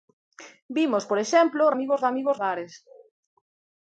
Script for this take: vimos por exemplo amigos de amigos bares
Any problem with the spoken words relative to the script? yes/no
no